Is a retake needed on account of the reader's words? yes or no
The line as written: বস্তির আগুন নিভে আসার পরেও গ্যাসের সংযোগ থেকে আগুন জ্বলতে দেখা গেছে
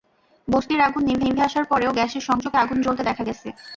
yes